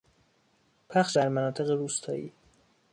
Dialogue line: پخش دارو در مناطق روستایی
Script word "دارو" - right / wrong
wrong